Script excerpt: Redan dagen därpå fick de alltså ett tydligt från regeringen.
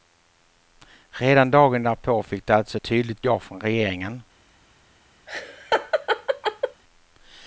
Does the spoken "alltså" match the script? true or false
true